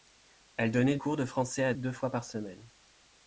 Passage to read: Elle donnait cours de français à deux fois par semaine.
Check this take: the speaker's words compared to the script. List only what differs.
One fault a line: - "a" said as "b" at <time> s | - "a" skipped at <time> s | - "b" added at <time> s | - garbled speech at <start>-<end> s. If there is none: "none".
none